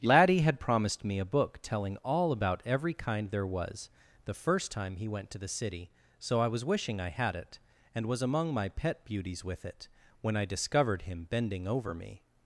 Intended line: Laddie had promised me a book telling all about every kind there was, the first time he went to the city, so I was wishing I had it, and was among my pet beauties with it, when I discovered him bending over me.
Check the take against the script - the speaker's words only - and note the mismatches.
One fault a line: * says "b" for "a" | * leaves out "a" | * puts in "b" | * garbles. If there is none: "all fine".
all fine